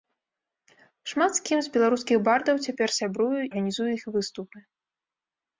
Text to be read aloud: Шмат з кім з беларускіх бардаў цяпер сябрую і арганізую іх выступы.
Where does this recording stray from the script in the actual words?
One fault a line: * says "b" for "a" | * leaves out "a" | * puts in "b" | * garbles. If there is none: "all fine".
* leaves out "і"